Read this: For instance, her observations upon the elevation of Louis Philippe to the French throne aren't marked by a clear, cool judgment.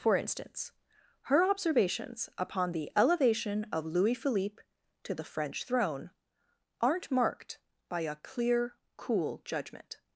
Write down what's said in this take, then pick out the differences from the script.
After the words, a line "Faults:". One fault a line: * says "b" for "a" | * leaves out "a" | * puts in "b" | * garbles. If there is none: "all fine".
For instance, her observations upon the elevation of Louis Philippe to the French throne aren't marked by a clear, cool judgment.
Faults:
all fine